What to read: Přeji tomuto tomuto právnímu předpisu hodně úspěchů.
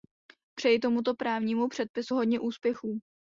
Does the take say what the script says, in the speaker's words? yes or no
no